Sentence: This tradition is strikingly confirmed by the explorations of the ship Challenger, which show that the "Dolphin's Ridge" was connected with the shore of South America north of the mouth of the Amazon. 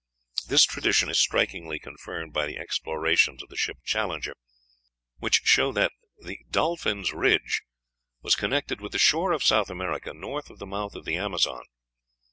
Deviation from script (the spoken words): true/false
false